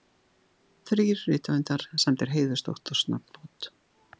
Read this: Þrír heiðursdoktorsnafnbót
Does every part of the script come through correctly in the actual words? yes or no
no